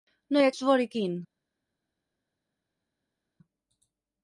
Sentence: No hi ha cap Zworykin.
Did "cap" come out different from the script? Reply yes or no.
yes